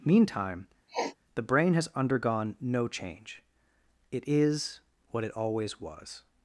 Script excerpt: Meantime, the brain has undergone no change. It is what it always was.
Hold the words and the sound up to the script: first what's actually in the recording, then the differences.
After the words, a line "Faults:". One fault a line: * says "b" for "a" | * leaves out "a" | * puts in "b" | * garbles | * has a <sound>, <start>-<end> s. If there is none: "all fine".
Meantime, the brain has undergone no change. It is what it always was.
Faults:
* has a sniff, 0.9-1.2 s